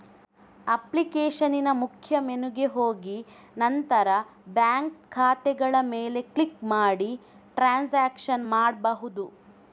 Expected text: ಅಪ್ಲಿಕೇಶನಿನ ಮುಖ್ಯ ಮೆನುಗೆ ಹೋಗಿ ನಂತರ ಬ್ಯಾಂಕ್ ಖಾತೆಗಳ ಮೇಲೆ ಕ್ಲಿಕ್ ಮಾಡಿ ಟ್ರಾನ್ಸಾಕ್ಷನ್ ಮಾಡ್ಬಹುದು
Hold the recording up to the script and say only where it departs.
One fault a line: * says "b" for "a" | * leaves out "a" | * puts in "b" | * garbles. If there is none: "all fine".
all fine